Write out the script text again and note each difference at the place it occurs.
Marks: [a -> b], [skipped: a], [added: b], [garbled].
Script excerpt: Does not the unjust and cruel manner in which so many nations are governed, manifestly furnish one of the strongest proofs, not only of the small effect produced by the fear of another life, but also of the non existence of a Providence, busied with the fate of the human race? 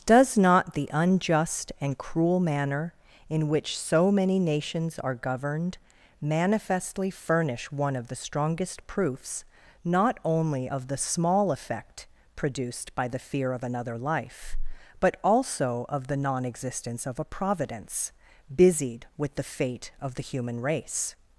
Does not the unjust and cruel manner in which so many nations are governed, manifestly furnish one of the strongest proofs, not only of the small effect produced by the fear of another life, but also of the non existence of a Providence, busied with the fate of the human race?